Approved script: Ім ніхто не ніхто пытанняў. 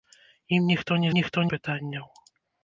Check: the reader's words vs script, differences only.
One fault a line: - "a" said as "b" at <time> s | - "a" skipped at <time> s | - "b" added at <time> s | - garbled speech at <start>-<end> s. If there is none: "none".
none